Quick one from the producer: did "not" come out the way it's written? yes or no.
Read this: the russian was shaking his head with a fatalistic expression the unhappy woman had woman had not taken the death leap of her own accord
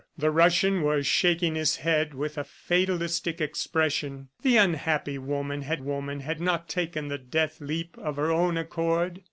yes